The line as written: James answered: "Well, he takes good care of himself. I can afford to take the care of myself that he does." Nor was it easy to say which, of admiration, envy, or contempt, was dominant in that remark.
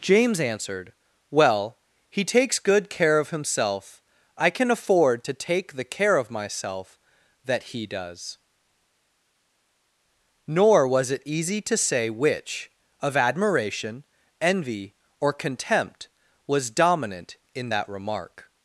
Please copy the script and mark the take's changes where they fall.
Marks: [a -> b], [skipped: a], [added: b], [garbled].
James answered: "Well, he takes good care of himself. I can afford to take the care of myself that he does." Nor was it easy to say which, of admiration, envy, or contempt, was dominant in that remark.